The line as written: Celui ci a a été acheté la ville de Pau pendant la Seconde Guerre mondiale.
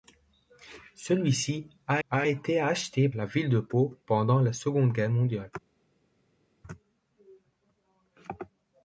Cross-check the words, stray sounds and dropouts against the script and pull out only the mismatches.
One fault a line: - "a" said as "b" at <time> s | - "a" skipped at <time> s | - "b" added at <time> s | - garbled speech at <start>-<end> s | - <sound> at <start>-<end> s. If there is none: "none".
none